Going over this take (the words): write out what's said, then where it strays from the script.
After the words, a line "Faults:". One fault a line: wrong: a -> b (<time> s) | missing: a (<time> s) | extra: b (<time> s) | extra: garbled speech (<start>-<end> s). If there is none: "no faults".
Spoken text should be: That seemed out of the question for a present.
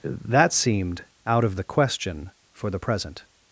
That seemed out of the question for the present.
Faults:
wrong: a -> the (2.7 s)